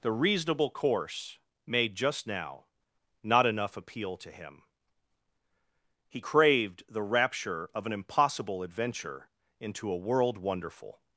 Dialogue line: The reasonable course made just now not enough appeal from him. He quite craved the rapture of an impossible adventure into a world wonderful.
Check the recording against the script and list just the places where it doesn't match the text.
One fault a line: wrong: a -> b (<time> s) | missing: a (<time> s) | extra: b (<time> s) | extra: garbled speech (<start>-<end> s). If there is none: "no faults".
wrong: from -> to (4.2 s)
missing: quite (6.2 s)